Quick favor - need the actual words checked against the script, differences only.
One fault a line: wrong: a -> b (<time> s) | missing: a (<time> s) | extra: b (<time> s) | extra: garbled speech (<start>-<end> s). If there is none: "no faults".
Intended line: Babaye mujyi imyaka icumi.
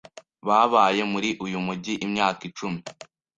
extra: muri uyu (1.1 s)